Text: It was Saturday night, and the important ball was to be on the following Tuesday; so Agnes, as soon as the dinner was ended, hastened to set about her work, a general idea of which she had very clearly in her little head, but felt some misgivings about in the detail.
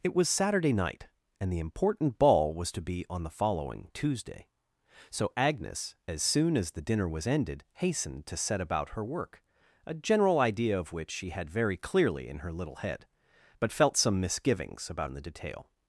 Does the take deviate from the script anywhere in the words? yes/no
no